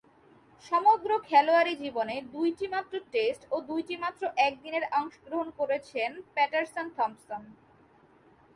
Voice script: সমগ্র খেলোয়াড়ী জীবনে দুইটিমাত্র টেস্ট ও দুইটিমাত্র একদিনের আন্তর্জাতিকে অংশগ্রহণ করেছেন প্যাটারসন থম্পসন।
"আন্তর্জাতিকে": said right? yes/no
no